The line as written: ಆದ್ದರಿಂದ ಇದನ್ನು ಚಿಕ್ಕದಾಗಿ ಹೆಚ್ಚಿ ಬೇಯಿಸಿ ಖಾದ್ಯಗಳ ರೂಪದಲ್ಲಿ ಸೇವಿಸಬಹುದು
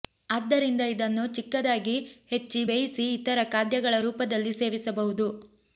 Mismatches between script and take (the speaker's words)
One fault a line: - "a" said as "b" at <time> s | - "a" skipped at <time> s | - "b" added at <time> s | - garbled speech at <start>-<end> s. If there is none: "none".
- "ಇತರ" added at 3.1 s